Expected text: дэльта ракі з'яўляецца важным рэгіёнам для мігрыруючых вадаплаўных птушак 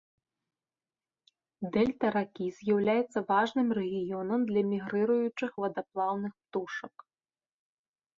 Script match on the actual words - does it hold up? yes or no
yes